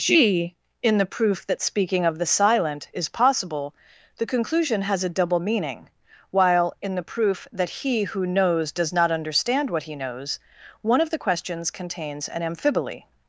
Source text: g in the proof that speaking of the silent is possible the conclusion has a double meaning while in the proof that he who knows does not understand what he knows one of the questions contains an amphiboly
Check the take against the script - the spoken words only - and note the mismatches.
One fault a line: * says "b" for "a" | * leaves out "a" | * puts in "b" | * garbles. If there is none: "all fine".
all fine